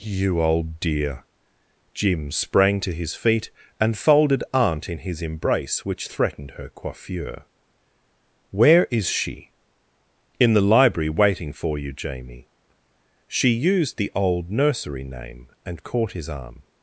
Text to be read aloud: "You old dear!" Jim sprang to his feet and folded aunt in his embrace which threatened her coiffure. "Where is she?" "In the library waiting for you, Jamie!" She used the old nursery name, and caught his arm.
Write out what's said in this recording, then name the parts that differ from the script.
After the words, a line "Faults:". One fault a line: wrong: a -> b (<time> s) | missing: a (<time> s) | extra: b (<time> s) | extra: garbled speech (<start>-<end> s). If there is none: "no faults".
"You old dear!" Jim sprang to his feet and folded aunt in his embrace which threatened her coiffure. "Where is she?" "In the library waiting for you, Jamie!" She used the old nursery name, and caught his arm.
Faults:
no faults